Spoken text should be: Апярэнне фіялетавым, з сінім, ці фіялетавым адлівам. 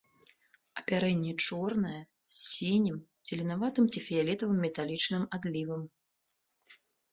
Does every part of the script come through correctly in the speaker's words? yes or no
no